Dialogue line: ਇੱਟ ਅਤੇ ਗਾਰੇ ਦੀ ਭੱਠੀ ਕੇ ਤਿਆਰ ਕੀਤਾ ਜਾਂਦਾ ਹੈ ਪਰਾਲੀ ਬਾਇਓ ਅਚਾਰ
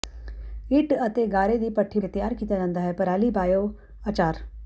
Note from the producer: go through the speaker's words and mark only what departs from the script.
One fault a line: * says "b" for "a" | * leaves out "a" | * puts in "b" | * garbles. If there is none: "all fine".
all fine